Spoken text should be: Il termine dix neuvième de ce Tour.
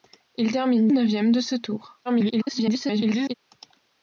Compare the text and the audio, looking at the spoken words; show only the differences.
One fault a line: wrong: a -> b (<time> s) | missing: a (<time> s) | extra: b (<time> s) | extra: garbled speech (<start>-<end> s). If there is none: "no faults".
missing: dix (0.9 s)
extra: garbled speech (2.0-3.3 s)